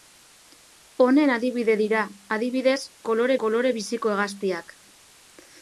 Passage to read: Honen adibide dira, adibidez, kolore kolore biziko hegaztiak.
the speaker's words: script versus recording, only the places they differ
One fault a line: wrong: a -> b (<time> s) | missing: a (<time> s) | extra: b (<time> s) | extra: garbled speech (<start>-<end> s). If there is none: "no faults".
no faults